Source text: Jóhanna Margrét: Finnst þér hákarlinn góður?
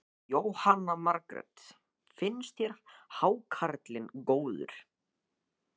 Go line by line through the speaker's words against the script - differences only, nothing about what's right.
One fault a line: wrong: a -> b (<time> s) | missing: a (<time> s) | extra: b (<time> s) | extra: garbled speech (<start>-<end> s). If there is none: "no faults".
no faults